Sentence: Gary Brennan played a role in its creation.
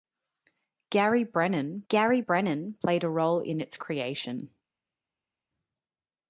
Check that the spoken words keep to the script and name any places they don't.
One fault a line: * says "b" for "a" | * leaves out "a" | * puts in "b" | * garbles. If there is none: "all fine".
* puts in "gary Brennan"